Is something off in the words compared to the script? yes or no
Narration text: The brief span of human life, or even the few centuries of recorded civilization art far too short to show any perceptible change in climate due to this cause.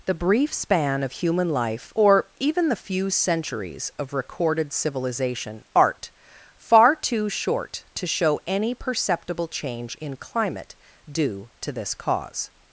no